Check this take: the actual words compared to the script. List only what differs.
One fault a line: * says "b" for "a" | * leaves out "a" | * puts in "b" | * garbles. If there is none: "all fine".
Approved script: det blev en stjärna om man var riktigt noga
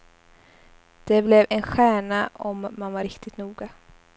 all fine